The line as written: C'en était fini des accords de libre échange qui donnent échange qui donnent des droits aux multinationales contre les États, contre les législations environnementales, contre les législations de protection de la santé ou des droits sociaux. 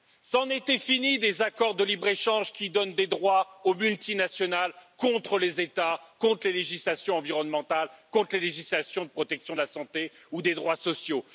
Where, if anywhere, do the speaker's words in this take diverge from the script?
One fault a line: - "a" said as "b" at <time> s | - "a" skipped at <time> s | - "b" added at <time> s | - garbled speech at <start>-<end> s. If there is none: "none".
- "échange qui donnent" skipped at 2.9 s